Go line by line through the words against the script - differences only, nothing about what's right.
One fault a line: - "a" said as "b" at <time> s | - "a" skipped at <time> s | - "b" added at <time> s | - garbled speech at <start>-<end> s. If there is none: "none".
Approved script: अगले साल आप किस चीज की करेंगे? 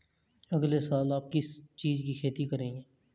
- "खेती" added at 2.1 s